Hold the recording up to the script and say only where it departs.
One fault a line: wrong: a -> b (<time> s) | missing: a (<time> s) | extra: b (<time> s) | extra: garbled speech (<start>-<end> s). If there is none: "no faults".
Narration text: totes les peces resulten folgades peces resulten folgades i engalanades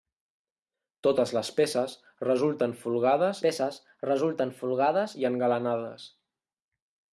no faults